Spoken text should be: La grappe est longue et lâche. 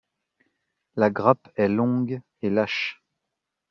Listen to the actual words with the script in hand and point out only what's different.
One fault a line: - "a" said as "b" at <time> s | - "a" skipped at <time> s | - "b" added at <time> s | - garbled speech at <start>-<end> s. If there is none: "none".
none